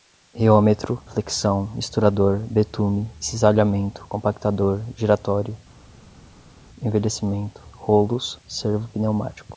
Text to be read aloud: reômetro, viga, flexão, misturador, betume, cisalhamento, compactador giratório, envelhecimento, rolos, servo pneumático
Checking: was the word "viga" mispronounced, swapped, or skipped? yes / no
yes